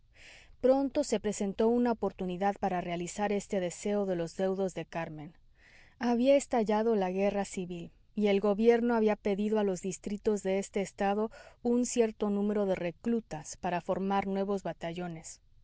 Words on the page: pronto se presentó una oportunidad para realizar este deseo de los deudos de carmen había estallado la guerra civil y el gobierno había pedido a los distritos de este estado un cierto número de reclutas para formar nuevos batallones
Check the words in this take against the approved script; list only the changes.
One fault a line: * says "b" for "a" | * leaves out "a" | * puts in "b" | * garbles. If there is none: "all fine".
all fine